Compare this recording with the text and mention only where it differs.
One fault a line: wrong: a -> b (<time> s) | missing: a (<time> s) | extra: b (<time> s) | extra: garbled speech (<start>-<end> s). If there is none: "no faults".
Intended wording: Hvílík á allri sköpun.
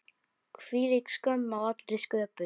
extra: skömm (1.1 s)